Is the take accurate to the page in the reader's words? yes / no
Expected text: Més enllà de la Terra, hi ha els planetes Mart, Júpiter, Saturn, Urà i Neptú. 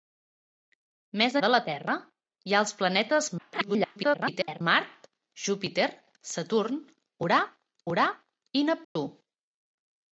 no